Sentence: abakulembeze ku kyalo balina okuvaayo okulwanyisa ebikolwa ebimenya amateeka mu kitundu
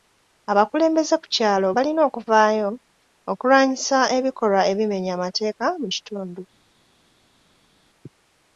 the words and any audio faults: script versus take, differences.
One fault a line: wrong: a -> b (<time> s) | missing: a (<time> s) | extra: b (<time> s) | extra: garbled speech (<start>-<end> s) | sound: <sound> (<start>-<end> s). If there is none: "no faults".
no faults